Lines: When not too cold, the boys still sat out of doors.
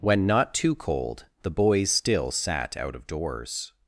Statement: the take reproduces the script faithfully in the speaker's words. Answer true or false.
true